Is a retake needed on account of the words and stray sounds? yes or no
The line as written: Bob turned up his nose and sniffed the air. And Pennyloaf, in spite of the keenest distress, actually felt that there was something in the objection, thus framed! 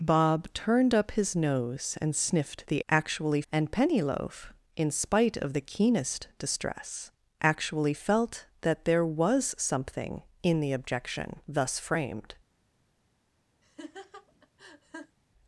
yes